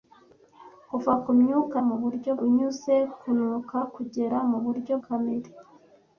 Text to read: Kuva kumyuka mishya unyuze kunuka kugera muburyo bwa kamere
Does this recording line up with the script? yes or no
no